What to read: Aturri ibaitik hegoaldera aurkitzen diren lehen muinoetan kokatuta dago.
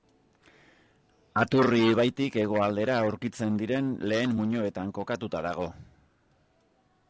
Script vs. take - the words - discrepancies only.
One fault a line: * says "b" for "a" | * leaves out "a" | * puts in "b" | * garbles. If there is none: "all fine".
all fine